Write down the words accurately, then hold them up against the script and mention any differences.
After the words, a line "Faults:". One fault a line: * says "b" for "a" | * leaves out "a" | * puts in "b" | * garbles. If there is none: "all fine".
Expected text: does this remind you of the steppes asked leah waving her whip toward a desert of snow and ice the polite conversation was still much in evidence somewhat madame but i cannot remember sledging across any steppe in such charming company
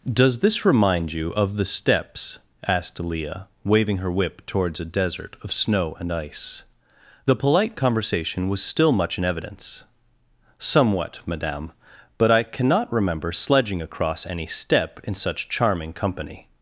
does this remind you of the steppes asked leah waving her whip towards a desert of snow and ice the polite conversation was still much in evidence somewhat madame but i cannot remember sledging across any steppe in such charming company
Faults:
* says "towards" for "toward"